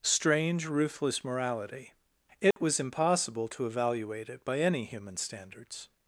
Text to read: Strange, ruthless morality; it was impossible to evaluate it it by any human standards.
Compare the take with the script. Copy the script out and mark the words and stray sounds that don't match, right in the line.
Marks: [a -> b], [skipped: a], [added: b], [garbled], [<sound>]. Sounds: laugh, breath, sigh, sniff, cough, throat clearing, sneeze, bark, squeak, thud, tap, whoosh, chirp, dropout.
Strange, ruthless morality; it [dropout] was impossible to evaluate it [skipped: it] by any human standards.